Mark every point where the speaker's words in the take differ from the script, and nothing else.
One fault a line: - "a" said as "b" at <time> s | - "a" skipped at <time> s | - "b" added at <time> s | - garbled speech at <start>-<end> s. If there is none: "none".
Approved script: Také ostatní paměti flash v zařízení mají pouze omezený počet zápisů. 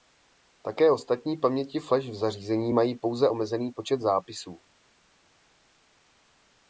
none